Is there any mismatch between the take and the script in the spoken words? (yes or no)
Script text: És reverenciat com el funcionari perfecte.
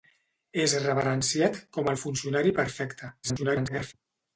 yes